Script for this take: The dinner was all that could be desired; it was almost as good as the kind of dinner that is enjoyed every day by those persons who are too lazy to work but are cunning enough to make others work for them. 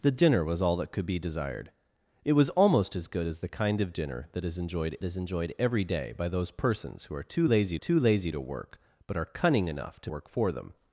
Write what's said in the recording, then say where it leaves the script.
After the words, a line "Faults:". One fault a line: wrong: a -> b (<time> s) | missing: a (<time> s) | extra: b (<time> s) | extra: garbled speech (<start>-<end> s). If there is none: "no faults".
The dinner was all that could be desired; it was almost as good as the kind of dinner that is enjoyed is enjoyed every day by those persons who are too lazy too lazy to work but are cunning enough to work for them.
Faults:
extra: is enjoyed (5.0 s)
extra: too lazy (7.7 s)
missing: make others (10.1 s)